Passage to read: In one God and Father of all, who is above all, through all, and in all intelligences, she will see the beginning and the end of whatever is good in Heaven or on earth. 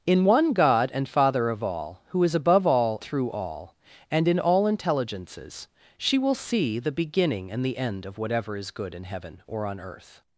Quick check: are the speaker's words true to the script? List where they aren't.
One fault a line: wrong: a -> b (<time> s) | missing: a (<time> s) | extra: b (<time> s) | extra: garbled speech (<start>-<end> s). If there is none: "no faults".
no faults